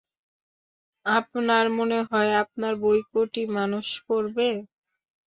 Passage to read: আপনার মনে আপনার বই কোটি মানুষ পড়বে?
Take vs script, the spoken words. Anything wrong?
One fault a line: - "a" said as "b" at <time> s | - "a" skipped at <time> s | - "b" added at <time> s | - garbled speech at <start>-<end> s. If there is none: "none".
- "হয়" added at 2.1 s